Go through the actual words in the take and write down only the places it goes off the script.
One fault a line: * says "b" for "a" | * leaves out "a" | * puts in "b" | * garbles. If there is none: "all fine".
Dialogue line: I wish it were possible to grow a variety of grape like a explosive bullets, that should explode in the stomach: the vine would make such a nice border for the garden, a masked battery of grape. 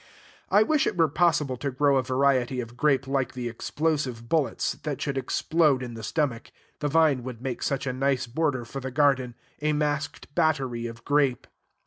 * says "the" for "a"